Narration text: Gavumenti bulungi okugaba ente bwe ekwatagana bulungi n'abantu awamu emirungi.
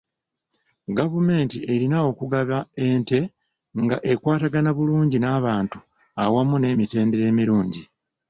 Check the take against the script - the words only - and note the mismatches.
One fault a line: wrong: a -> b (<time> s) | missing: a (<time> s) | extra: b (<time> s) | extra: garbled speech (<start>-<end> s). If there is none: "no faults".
wrong: bulungi -> erina (1.7 s)
wrong: bwe -> nga (3.8 s)
extra: n'emitendera (6.6 s)